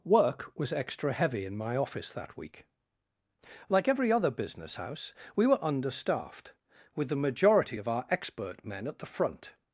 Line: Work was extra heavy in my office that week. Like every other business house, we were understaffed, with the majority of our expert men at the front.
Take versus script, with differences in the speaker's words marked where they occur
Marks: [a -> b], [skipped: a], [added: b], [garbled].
Work was extra heavy in my office that week. Like every other business house, we were understaffed, with the majority of our expert men at the front.